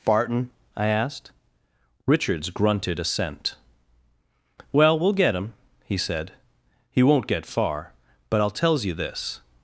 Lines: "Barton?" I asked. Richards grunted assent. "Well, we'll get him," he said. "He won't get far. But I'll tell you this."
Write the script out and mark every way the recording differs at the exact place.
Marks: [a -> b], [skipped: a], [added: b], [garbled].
"Barton?" I asked. Richards grunted assent. "Well, we'll get him," he said. "He won't get far. But I'll [tell -> tells] you this."